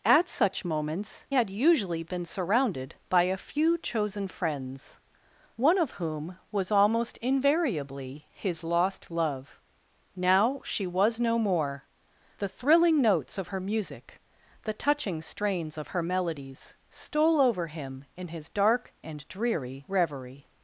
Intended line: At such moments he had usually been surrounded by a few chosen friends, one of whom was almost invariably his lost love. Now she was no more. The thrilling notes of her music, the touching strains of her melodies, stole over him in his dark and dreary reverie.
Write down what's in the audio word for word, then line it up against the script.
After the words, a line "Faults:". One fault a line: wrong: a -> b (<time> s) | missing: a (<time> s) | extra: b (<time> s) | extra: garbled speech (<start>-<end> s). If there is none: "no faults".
At such moments had usually been surrounded by a few chosen friends, one of whom was almost invariably his lost love. Now she was no more. The thrilling notes of her music, the touching strains of her melodies, stole over him in his dark and dreary reverie.
Faults:
missing: he (1.3 s)